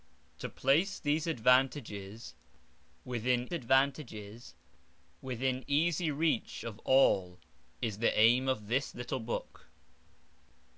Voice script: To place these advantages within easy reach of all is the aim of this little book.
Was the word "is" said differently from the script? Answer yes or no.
no